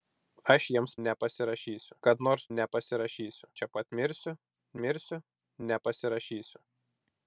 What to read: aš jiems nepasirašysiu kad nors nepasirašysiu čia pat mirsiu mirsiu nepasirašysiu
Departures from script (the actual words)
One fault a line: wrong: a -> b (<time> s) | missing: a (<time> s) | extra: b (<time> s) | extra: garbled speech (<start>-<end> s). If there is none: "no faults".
no faults